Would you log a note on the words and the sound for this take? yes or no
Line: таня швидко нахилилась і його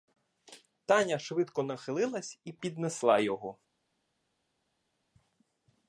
yes